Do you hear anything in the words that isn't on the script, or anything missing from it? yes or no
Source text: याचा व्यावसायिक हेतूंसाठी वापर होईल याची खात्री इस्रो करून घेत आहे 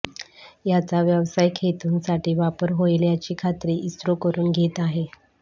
no